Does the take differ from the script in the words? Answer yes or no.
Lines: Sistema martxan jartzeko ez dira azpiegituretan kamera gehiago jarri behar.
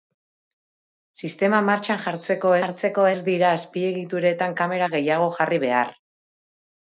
yes